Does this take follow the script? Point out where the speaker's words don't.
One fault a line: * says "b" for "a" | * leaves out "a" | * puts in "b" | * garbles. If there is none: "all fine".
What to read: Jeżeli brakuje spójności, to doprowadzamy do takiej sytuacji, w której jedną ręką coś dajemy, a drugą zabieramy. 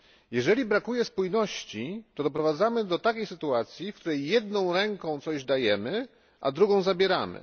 all fine